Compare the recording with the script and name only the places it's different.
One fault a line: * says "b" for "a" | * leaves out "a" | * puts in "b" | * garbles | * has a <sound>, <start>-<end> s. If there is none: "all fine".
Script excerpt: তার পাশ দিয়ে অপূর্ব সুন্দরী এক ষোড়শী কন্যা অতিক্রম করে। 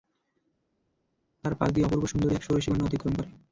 all fine